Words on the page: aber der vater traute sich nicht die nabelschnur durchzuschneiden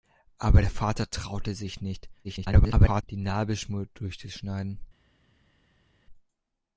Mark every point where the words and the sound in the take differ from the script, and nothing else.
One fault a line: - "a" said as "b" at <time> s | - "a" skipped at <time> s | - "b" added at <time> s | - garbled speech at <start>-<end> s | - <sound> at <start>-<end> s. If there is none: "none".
- garbled speech at 2.2-3.0 s